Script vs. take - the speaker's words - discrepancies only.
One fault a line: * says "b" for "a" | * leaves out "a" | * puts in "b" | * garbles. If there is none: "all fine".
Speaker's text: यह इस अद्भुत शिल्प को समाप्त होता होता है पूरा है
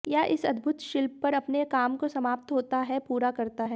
* puts in "पर अपने काम"
* leaves out "होता"
* puts in "करता"